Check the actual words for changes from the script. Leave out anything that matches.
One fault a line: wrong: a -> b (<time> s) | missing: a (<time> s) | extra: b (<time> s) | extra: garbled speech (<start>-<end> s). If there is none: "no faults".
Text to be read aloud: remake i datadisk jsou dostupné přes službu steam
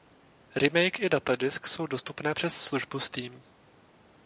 no faults